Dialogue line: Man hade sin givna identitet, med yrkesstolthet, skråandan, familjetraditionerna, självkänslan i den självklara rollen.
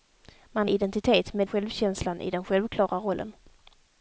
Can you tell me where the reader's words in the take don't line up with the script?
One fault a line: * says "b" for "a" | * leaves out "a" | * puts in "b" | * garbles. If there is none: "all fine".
* leaves out "hade sin givna"
* leaves out "yrkesstolthet skråandan familjetraditionerna"